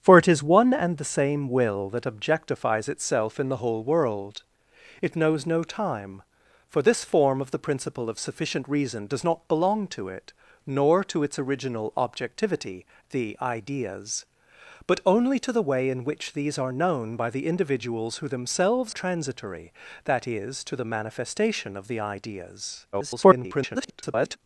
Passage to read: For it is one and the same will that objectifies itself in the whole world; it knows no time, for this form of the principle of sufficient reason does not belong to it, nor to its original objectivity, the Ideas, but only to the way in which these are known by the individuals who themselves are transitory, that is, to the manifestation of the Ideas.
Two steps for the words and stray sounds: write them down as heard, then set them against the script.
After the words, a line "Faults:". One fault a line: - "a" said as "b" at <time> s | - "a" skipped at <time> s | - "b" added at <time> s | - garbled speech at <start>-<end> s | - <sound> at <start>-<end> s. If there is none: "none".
For it is one and the same will that objectifies itself in the whole world; it knows no time, for this form of the principle of sufficient reason does not belong to it, nor to its original objectivity, the Ideas, but only to the way in which these are known by the individuals who themselves transitory, that is, to the manifestation of the Ideas. [garbled]
Faults:
- "are" skipped at 18.9 s
- garbled speech at 22.9-24.4 s